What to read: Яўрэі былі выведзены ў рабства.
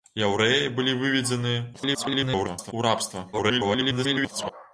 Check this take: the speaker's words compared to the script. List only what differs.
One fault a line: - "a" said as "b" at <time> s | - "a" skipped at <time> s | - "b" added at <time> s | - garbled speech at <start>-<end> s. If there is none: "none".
- garbled speech at 1.7-2.7 s
- garbled speech at 3.3-4.5 s